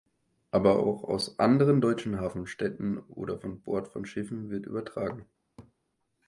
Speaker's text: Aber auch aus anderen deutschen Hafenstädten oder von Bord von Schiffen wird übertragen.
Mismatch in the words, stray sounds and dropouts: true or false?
true